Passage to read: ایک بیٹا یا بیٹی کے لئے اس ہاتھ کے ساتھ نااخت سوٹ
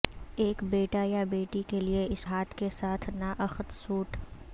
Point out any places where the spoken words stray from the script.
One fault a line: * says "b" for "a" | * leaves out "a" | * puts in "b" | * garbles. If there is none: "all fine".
all fine